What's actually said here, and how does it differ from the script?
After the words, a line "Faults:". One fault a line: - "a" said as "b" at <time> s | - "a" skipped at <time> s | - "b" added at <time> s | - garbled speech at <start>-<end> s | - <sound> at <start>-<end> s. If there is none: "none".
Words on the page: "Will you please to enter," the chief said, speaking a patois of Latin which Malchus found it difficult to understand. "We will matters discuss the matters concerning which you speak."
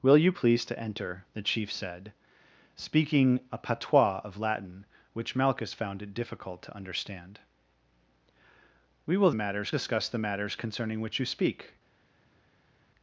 "Will you please to enter," the chief said, speaking a patois of Latin which Malchus found it difficult to understand. "We will matters discuss the matters concerning which you speak."
Faults:
none